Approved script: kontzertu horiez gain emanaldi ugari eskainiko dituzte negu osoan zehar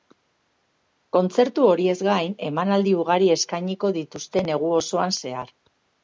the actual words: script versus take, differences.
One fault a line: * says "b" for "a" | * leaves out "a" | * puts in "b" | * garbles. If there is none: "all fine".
all fine